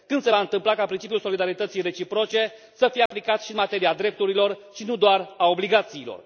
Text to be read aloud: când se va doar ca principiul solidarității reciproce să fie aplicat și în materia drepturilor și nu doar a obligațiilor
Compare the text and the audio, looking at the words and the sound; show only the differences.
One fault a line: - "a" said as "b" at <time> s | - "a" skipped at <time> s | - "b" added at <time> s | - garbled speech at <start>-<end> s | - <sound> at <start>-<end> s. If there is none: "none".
- "doar" said as "întâmpla" at 0.4 s
- dropout at 3.1-3.1 s